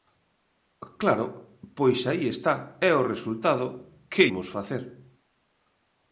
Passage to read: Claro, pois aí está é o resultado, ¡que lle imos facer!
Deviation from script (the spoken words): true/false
true